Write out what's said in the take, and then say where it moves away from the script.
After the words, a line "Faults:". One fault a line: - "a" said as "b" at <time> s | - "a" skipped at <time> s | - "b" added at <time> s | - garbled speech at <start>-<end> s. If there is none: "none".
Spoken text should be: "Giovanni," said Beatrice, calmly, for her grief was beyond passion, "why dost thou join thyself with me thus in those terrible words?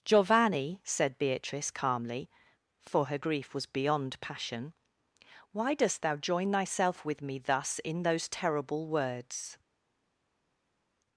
"Giovanni," said Beatrice, calmly, for her grief was beyond passion, "why dost thou join thyself with me thus in those terrible words?
Faults:
none